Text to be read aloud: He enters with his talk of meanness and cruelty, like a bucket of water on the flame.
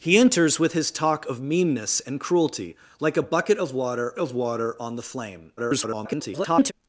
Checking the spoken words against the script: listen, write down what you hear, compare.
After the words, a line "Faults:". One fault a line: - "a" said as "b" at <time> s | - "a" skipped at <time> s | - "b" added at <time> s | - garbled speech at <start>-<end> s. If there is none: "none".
He enters with his talk of meanness and cruelty, like a bucket of water of water on the flame. [garbled]
Faults:
- "of water" added at 4.2 s
- garbled speech at 5.6-6.7 s